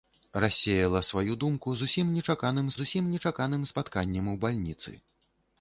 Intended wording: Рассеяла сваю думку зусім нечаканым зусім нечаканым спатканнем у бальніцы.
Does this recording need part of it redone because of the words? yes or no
no